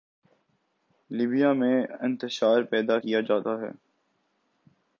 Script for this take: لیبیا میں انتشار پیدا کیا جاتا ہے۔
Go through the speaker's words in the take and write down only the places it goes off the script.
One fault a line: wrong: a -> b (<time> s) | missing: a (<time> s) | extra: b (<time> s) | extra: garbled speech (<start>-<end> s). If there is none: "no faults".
no faults